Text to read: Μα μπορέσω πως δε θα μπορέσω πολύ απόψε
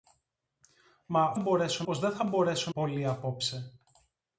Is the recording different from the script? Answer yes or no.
no